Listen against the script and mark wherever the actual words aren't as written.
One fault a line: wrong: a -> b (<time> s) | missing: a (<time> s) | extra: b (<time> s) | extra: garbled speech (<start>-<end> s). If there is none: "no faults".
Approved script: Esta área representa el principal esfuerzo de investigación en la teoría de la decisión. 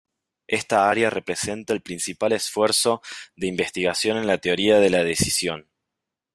no faults